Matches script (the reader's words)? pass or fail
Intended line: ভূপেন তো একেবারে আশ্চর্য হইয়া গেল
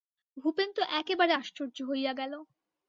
pass